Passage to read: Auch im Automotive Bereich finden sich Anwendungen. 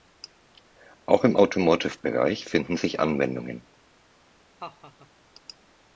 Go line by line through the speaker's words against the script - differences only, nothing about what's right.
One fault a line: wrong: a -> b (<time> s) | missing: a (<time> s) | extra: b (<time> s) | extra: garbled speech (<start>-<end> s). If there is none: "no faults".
no faults